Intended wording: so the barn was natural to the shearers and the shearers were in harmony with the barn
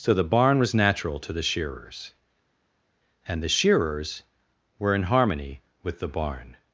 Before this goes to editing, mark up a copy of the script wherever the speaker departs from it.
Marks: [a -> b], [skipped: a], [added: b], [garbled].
so the barn was natural to the shearers and the shearers were in harmony with the barn